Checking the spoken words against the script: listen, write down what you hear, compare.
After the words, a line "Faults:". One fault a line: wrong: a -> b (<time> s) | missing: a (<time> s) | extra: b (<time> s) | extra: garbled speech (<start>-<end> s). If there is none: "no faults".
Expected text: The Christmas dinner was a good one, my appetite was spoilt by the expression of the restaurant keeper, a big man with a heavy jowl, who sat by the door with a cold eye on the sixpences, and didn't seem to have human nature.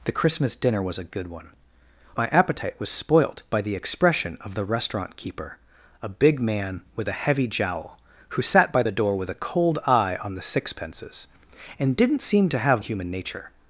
The Christmas dinner was a good one, my appetite was spoilt by the expression of the restaurant keeper, a big man with a heavy jowl, who sat by the door with a cold eye on the sixpences, and didn't seem to have human nature.
Faults:
no faults